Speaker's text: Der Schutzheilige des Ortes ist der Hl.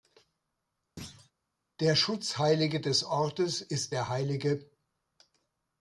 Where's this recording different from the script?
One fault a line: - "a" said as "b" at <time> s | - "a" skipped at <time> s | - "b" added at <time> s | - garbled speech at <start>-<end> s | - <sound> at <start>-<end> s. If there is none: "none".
- thud at 1.0-1.3 s